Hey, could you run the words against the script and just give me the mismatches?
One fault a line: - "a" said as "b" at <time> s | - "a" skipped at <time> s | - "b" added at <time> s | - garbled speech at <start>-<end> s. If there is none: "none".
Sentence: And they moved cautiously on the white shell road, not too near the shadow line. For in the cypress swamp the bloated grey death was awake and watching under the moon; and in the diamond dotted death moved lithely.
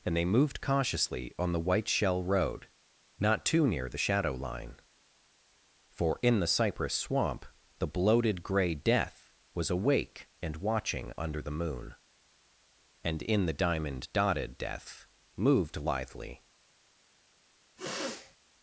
none